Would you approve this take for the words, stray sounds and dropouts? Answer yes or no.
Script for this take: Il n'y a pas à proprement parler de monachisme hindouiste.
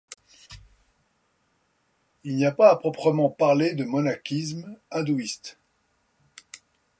yes